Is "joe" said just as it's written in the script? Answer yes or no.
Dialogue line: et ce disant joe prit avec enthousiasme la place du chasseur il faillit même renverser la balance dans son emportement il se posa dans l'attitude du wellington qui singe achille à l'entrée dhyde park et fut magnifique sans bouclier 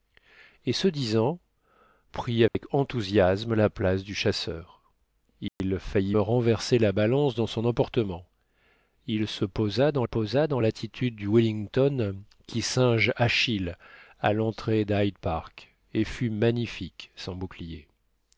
no